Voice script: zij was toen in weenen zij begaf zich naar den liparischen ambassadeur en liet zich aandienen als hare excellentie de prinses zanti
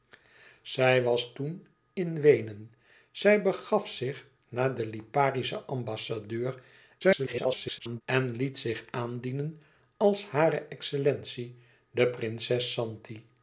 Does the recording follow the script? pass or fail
fail